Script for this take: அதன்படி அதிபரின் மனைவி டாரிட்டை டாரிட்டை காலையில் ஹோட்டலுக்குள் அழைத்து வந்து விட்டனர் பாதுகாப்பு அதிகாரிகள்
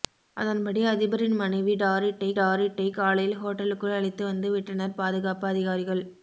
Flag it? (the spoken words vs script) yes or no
no